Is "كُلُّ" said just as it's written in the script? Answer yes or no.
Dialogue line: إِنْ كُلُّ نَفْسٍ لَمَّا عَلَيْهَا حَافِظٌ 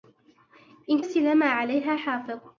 no